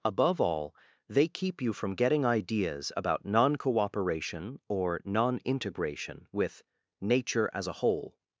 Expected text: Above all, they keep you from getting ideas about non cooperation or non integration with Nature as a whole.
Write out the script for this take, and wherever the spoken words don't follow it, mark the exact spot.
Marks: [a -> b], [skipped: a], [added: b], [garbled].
Above all, they keep you from getting ideas about non cooperation or non integration with Nature as a whole.